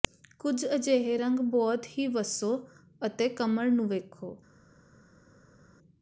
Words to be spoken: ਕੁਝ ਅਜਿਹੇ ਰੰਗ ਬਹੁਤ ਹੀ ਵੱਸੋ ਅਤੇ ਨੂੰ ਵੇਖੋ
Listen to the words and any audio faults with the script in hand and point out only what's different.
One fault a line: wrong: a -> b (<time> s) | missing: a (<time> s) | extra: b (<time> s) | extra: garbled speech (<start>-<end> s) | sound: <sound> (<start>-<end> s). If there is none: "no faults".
extra: ਕਮਰ (3.3 s)